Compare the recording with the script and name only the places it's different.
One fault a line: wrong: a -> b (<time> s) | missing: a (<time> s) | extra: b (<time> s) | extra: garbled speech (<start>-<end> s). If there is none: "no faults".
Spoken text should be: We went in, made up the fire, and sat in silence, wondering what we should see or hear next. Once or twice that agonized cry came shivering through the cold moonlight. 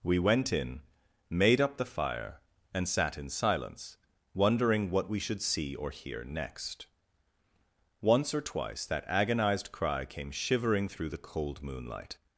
no faults